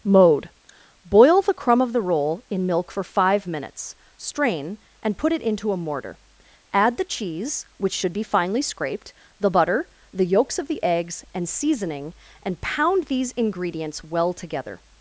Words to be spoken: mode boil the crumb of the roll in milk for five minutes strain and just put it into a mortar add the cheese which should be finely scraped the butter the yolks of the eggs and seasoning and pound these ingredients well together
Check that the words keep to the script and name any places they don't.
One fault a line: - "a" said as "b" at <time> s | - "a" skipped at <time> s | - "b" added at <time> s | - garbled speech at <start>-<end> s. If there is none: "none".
- "just" skipped at 5.2 s